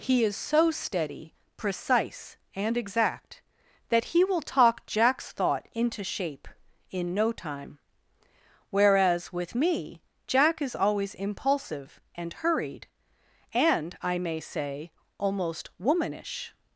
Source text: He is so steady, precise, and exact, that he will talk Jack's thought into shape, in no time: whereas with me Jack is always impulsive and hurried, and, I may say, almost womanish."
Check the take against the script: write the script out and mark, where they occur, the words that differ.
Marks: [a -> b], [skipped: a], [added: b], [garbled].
He is so steady, precise, and exact, that he will talk Jack's thought into shape, in no time: whereas with me Jack is always impulsive and hurried, and, I may say, almost womanish."